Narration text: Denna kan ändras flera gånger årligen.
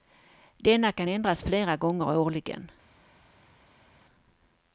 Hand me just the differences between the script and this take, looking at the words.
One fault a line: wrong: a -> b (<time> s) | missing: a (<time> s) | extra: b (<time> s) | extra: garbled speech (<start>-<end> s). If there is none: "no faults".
no faults